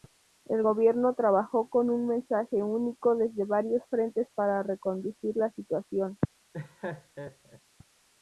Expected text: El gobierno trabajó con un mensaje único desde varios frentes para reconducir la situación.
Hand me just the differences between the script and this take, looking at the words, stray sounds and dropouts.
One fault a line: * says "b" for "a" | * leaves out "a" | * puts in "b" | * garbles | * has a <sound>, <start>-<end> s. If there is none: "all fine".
* has a laugh, 6.5-7.6 s